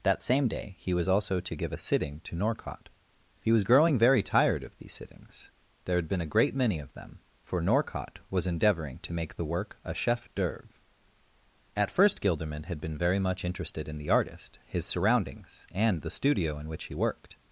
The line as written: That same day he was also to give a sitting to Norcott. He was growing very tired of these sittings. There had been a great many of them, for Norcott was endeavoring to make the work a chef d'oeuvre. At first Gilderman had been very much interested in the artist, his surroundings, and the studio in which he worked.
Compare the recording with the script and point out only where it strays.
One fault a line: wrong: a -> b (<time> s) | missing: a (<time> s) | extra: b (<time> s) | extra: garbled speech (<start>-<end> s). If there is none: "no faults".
no faults